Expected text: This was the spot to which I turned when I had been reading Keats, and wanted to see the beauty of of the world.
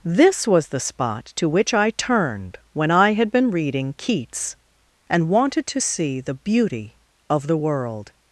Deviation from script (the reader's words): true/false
true